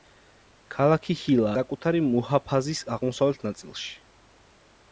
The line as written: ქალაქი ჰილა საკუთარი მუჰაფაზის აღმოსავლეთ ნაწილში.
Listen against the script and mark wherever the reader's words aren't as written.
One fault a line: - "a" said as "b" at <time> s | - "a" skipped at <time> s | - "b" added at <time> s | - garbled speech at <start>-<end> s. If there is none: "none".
none